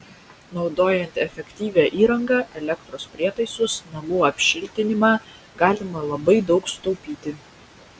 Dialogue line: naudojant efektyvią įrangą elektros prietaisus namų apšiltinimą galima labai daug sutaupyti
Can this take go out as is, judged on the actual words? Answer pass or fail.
pass